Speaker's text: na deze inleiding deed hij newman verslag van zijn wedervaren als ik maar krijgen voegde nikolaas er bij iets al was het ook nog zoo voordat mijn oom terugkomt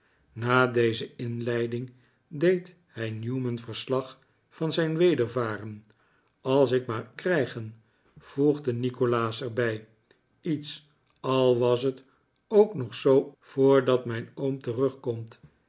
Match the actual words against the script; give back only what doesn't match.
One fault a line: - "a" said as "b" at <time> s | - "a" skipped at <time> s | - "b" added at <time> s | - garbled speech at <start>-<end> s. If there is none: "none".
none